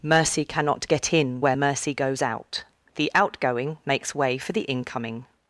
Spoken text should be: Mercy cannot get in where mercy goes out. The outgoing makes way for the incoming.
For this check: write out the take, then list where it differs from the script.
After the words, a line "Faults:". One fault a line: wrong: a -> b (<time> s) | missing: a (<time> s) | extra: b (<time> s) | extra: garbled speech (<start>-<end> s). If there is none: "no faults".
Mercy cannot get in where mercy goes out. The outgoing makes way for the incoming.
Faults:
no faults